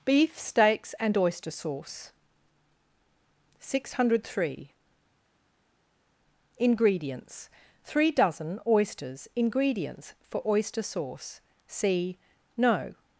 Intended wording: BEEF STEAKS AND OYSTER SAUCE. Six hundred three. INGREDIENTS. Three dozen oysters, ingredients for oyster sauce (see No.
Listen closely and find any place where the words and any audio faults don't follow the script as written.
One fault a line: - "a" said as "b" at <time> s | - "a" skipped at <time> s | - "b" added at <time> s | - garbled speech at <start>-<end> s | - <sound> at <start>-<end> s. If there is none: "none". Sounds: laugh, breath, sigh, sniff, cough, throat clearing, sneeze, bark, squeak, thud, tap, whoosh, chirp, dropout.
none